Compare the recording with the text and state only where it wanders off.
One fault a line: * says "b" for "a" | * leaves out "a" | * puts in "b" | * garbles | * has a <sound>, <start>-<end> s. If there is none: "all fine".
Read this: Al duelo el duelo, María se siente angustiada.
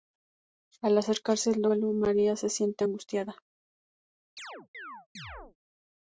* says "acercarse" for "duelo"
* has a chirp, 4.4-5.6 s